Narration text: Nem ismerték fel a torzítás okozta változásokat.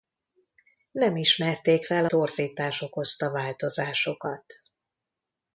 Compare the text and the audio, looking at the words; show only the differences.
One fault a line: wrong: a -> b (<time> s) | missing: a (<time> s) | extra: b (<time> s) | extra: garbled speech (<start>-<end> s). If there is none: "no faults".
missing: a (2.1 s)